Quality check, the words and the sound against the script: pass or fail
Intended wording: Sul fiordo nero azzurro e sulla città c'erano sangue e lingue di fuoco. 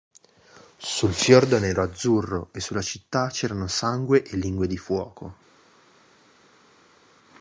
pass